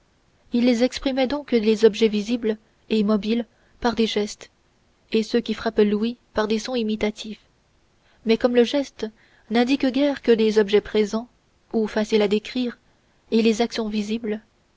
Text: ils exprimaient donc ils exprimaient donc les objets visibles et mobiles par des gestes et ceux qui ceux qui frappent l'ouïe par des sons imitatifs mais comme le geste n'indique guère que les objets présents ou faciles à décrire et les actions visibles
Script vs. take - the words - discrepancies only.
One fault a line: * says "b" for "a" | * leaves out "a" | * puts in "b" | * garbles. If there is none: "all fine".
* leaves out "ils exprimaient donc"
* leaves out "ceux qui"